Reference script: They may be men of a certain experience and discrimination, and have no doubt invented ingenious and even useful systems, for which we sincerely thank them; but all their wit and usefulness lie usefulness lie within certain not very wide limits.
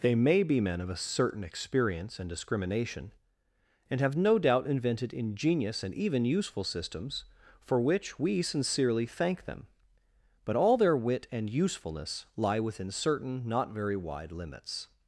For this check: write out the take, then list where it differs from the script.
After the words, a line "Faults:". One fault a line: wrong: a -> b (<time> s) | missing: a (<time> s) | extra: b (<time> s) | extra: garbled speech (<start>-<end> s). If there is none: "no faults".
They may be men of a certain experience and discrimination, and have no doubt invented ingenious and even useful systems, for which we sincerely thank them; but all their wit and usefulness lie within certain not very wide limits.
Faults:
missing: usefulness lie (12.6 s)